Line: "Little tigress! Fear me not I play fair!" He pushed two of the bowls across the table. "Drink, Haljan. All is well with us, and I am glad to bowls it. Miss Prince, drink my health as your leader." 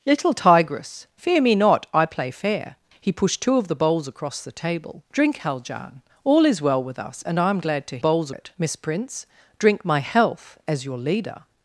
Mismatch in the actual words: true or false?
false